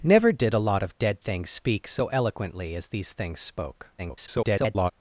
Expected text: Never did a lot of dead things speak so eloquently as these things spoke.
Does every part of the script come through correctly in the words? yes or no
no